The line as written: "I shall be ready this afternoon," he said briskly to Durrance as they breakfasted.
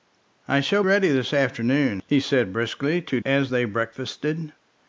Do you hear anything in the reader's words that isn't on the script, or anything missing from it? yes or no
yes